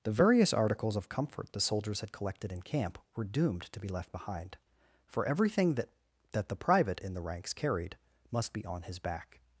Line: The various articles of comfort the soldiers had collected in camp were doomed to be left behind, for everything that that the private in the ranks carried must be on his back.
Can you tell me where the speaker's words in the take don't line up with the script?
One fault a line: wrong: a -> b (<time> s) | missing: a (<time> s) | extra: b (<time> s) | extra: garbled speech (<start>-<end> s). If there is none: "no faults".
no faults